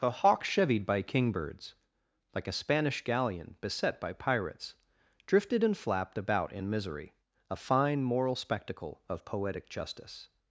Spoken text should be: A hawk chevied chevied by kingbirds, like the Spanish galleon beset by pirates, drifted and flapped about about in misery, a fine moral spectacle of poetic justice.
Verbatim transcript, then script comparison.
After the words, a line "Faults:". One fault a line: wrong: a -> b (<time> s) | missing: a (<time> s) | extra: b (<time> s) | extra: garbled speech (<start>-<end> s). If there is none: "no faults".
A hawk chevied by kingbirds, like a Spanish galleon beset by pirates, drifted and flapped about in misery, a fine moral spectacle of poetic justice.
Faults:
missing: chevied (0.8 s)
wrong: the -> a (2.5 s)
missing: about (6.5 s)